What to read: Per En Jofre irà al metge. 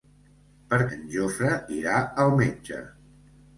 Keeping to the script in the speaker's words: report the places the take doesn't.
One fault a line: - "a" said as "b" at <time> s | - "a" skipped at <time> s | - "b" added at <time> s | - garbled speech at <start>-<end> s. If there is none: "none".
none